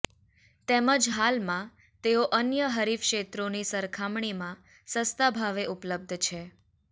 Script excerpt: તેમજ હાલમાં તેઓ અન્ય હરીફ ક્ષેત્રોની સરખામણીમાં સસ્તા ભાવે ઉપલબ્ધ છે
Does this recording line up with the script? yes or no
yes